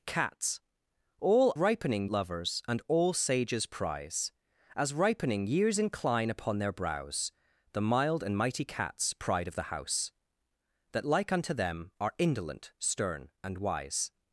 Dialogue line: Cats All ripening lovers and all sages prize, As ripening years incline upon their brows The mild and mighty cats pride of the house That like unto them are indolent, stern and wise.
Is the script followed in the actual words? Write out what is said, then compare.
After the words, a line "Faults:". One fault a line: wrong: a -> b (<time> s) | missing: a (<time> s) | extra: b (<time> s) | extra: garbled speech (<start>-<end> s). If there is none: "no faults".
Cats All ripening lovers and all sages prize, As ripening years incline upon their brows The mild and mighty cats pride of the house That like unto them are indolent, stern and wise.
Faults:
no faults